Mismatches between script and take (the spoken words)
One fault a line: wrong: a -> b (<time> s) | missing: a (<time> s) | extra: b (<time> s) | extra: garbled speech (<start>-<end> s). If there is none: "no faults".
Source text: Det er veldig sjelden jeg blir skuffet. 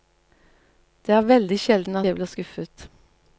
no faults